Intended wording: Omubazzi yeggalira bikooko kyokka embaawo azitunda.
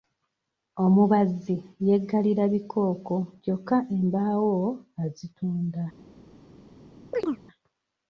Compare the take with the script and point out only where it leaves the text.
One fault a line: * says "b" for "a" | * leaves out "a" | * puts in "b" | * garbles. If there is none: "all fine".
all fine